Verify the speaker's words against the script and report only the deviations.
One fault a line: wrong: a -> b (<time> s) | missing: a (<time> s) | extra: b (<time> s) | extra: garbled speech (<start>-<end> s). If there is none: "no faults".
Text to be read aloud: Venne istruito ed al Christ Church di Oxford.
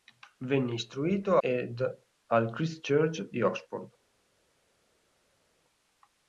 no faults